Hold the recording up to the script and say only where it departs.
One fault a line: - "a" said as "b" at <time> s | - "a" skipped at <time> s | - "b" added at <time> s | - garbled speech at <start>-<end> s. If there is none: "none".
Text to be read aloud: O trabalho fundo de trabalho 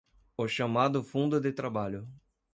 - "trabalho" said as "chamado" at 0.5 s